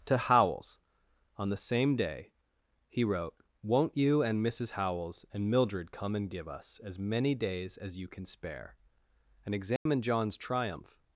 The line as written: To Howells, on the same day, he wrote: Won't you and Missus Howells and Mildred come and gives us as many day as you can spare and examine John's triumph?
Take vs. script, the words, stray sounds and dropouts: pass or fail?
fail